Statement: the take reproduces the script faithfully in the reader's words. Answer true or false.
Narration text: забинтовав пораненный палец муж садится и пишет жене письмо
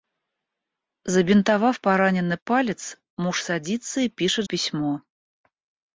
false